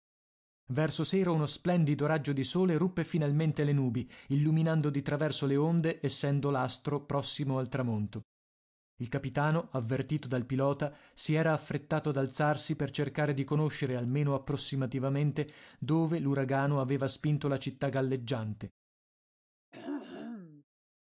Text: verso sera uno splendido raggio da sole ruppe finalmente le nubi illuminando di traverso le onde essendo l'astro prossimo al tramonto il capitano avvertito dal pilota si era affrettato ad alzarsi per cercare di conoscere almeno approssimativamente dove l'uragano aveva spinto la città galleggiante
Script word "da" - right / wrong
wrong